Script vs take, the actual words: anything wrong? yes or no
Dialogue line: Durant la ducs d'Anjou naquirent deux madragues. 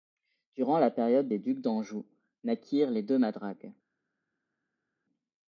yes